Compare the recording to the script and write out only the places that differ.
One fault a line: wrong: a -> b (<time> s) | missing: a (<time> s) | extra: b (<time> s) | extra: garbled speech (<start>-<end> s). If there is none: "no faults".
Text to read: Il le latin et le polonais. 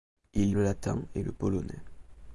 no faults